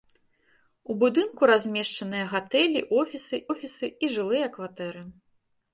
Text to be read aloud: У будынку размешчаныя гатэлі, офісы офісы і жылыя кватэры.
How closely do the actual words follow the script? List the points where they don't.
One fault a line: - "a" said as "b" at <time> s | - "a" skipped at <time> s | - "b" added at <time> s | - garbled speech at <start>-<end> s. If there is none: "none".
none